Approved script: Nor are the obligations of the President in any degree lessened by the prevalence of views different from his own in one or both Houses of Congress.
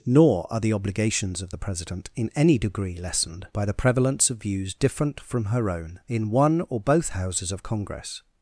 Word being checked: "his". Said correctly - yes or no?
no